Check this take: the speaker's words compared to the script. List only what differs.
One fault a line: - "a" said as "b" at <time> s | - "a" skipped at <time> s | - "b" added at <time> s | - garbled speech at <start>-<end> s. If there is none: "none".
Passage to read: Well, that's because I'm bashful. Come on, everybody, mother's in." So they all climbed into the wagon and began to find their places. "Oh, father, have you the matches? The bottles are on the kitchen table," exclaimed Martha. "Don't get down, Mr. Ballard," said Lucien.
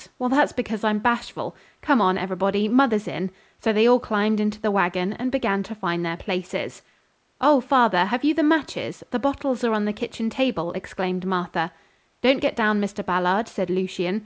none